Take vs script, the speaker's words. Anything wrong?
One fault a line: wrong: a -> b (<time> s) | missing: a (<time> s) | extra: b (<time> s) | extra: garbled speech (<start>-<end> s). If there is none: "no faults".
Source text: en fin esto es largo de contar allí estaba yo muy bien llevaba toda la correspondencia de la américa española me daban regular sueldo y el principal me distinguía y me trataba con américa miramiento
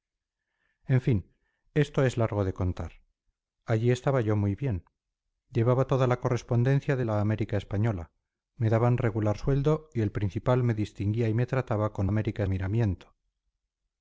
no faults